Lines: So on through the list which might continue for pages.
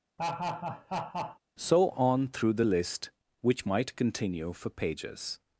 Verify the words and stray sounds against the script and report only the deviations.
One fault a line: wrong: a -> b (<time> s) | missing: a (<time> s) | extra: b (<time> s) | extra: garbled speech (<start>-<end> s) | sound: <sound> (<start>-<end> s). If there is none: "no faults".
sound: laugh (0.2-1.4 s)